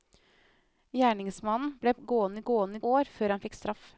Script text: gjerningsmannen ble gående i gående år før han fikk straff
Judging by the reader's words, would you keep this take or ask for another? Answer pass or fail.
pass